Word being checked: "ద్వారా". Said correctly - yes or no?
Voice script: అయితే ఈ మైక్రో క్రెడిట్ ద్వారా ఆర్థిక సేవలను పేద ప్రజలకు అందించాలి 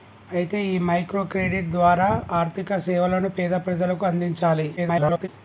yes